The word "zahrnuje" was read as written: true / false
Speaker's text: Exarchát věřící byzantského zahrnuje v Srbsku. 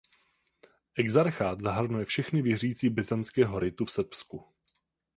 false